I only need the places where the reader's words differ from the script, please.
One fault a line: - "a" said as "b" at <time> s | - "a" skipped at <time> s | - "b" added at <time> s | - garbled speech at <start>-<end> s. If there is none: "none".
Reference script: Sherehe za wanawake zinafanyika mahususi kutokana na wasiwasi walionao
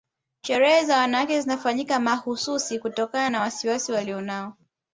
none